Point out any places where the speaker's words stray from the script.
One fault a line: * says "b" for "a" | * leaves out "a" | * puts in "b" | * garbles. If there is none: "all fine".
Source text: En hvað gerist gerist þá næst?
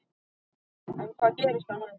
* leaves out "gerist"